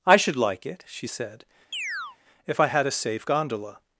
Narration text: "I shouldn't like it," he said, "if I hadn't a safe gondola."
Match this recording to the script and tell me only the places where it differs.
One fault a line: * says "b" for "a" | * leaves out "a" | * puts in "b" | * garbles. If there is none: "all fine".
* says "should" for "shouldn't"
* says "she" for "he"
* says "had" for "hadn't"